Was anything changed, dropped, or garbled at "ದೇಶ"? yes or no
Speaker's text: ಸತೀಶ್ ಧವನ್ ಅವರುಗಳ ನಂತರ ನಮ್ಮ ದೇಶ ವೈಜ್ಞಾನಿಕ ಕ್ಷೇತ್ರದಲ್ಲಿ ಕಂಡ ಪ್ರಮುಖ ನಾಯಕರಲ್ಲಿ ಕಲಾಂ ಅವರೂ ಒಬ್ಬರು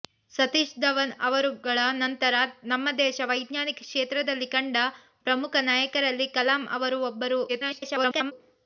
no